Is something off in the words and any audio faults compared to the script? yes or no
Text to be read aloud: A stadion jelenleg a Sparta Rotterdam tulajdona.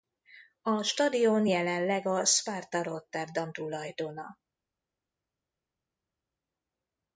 no